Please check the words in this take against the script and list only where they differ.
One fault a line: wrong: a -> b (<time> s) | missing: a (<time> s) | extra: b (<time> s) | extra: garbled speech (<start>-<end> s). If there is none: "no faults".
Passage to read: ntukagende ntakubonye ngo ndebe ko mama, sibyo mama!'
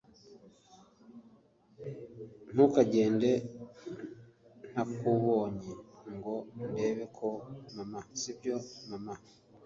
no faults